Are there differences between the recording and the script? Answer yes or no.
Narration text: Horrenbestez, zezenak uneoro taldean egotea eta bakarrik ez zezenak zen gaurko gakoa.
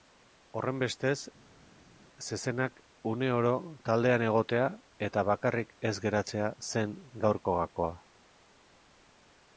yes